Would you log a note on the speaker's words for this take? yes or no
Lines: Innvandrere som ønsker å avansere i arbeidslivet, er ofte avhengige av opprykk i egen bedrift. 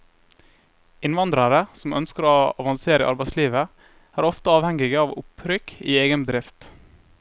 no